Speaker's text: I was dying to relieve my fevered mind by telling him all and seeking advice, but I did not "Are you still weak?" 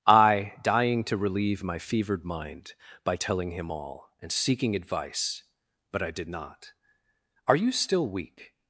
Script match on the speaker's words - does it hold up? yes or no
no